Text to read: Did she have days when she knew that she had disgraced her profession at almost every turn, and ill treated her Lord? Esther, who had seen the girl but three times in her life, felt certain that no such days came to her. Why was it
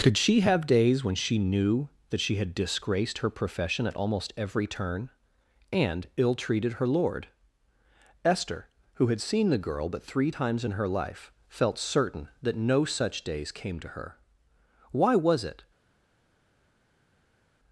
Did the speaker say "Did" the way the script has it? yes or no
no